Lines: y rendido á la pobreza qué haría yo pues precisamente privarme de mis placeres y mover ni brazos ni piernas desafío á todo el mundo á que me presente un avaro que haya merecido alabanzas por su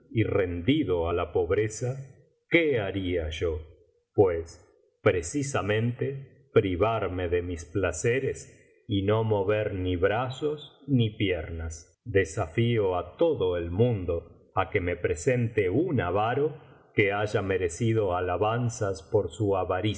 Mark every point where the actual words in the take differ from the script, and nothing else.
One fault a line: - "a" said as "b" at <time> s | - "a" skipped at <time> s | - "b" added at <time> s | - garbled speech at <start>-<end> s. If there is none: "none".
- "no" added at 9.0 s